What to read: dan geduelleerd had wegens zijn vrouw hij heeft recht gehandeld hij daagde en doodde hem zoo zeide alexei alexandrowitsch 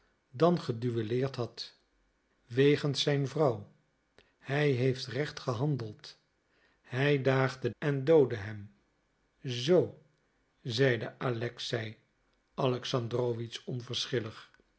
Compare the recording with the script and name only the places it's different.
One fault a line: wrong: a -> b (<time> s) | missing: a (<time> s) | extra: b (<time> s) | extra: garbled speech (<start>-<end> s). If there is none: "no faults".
no faults